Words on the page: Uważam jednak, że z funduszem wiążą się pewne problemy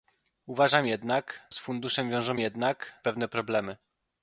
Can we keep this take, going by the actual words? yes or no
no